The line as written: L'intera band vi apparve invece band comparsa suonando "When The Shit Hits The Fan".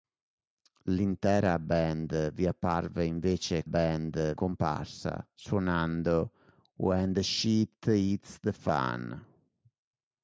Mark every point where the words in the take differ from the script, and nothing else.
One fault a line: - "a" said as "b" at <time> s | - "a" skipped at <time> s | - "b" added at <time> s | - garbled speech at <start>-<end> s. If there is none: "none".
none